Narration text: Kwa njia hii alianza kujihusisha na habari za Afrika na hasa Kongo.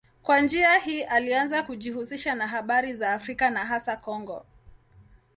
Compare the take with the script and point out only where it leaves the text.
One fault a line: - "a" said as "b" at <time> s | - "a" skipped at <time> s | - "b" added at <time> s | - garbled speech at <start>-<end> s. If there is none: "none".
none